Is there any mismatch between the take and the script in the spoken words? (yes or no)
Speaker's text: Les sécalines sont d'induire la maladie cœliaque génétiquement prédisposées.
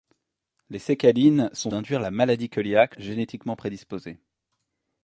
no